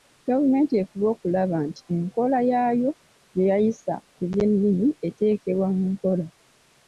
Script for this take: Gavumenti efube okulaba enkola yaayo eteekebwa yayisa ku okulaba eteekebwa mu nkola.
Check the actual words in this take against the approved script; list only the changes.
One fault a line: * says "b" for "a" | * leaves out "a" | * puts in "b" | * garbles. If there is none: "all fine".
* puts in "nti"
* says "gye" for "eteekebwa"
* says "by'ennimi" for "okulaba"